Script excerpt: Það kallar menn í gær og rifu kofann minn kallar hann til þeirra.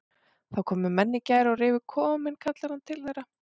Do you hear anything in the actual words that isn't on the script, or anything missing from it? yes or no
yes